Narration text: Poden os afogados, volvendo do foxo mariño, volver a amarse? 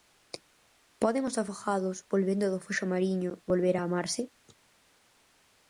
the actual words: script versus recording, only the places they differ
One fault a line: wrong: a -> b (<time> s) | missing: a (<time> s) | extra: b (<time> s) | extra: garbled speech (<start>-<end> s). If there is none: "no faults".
no faults